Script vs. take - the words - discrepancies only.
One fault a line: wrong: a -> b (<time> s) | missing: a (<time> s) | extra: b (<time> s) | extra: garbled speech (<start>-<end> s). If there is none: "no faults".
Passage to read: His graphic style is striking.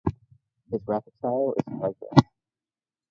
no faults